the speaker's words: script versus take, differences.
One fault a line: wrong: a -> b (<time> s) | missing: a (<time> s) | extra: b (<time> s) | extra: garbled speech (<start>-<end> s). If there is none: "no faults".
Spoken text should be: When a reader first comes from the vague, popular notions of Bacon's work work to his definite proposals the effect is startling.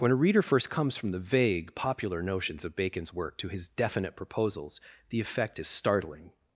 missing: work (3.4 s)